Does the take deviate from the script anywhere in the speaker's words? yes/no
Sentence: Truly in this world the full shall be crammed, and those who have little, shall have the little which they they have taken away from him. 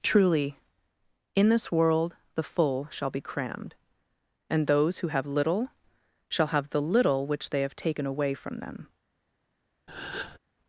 yes